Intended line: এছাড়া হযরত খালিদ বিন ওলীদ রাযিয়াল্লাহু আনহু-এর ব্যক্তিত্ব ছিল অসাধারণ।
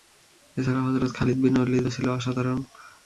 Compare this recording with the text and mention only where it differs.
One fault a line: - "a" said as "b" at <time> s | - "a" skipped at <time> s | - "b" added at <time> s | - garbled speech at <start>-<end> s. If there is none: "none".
- "রাযিয়াল্লাহু আনহু-এর ব্যক্তিত্ব" skipped at 1.9 s